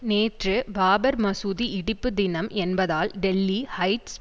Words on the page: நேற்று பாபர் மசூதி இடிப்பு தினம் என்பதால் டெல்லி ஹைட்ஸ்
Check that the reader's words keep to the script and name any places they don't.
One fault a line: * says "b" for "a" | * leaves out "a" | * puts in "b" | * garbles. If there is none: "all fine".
all fine